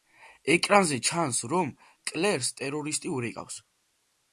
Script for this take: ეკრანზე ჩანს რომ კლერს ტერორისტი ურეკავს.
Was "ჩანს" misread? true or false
false